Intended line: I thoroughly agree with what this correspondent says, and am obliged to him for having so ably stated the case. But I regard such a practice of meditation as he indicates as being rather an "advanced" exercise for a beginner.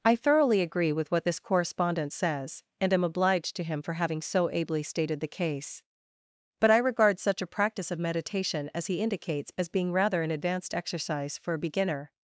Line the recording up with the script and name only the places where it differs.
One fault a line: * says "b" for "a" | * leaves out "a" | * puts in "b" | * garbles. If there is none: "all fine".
all fine